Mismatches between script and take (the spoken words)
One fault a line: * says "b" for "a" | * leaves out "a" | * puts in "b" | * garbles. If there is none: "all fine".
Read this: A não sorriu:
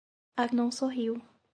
all fine